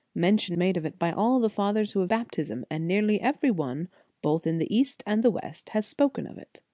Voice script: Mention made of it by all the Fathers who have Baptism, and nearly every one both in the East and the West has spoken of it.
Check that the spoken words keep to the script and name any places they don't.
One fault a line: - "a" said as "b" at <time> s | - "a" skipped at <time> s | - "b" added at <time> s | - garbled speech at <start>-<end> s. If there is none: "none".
none